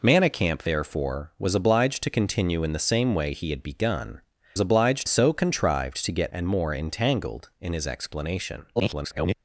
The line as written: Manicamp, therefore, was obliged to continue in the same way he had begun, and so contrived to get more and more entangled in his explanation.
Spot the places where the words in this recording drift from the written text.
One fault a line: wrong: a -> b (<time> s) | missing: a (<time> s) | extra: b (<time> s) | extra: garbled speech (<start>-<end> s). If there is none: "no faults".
wrong: and -> obliged (4.6 s)
missing: more (6.3 s)
extra: garbled speech (8.8-9.3 s)